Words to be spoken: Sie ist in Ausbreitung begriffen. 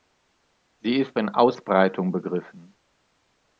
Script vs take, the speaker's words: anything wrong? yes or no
no